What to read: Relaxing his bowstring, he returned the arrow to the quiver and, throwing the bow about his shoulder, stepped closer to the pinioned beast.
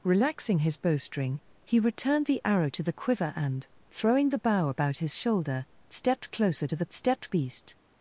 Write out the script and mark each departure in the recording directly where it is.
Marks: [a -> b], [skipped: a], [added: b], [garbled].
Relaxing his bowstring, he returned the arrow to the quiver and, throwing the bow about his shoulder, stepped closer to the [pinioned -> stepped] beast.